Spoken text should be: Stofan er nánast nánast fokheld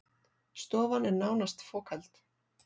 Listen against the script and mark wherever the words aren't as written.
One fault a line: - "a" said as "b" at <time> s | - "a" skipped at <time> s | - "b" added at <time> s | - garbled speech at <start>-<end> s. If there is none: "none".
- "nánast" skipped at 1.7 s